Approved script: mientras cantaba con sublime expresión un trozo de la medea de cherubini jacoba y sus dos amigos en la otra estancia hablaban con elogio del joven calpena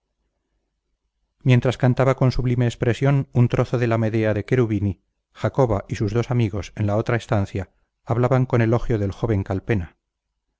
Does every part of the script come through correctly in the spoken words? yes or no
yes